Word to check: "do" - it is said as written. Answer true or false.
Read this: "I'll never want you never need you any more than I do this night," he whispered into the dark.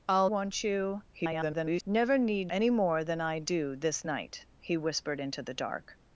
true